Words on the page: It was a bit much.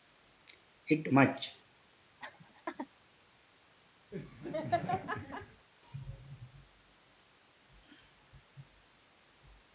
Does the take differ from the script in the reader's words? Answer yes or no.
yes